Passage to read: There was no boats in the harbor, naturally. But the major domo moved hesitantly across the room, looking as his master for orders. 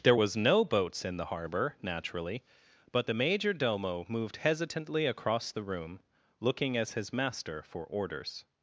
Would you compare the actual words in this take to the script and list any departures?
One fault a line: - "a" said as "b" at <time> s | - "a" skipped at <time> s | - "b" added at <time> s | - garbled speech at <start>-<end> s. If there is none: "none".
none